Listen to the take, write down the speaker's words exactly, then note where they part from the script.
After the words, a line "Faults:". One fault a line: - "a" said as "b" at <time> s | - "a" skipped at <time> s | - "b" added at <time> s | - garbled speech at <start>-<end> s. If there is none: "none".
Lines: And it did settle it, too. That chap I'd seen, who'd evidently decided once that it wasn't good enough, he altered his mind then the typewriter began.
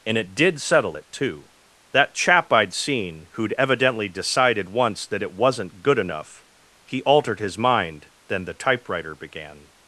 And it did settle it, too. That chap I'd seen, who'd evidently decided once that it wasn't good enough, he altered his mind then the typewriter began.
Faults:
none